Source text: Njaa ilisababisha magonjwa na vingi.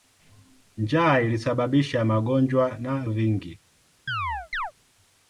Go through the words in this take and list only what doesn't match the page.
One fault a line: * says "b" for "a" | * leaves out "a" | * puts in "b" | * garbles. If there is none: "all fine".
all fine